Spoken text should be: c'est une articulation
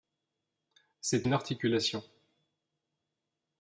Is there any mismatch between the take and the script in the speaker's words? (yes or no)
no